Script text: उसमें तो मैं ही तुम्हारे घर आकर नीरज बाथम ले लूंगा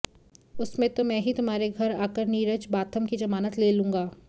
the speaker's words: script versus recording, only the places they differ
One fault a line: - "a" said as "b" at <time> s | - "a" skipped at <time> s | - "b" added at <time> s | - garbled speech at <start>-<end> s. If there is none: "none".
- "की जमानत" added at 3.0 s